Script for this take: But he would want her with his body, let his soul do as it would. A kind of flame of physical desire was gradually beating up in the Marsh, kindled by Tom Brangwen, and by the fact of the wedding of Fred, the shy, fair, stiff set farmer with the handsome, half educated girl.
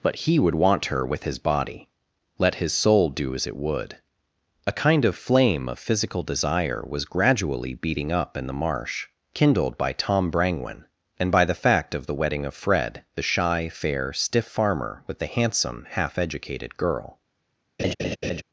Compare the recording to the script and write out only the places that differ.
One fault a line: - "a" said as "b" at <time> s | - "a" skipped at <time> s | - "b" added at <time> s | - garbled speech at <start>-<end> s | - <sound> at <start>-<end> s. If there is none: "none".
- "set" skipped at 14.5 s
- laugh at 17.8-18.4 s